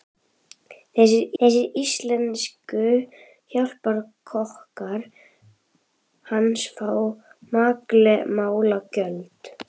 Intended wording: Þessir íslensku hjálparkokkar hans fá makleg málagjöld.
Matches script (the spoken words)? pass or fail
fail